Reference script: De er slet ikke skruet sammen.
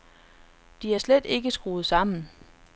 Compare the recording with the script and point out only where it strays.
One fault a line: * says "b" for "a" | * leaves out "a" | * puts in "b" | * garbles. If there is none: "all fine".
all fine